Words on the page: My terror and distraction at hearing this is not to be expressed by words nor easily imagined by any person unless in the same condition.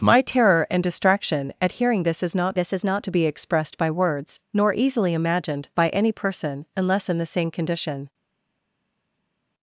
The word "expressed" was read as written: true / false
true